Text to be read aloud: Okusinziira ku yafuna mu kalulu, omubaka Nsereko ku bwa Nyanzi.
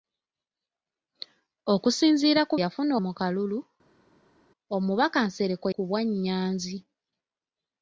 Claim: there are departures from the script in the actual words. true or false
false